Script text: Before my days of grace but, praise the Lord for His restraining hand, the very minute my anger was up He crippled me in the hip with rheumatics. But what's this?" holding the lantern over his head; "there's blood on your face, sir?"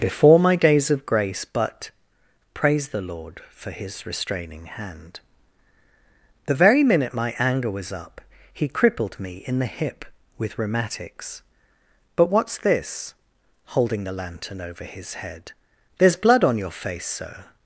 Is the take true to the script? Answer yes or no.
yes